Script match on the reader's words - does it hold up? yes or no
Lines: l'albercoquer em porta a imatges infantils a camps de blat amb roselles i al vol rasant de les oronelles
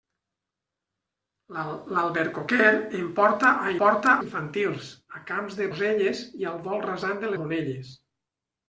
no